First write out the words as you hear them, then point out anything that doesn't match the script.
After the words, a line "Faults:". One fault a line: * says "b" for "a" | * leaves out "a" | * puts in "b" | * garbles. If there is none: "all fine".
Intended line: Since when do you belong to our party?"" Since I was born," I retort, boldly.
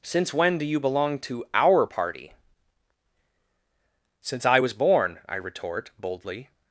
Since when do you belong to our party?"" Since I was born," I retort, boldly.
Faults:
all fine